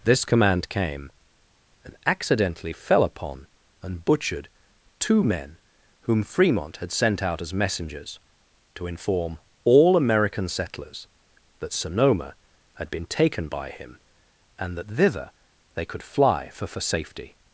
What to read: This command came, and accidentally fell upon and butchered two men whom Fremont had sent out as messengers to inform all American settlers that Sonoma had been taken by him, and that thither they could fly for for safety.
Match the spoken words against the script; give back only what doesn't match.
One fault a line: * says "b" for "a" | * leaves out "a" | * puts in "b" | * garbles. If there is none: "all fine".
all fine